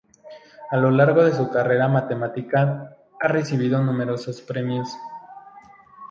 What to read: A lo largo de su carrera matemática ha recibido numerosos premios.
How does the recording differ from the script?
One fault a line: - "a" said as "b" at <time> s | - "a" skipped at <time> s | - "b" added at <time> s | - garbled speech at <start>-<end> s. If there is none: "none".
none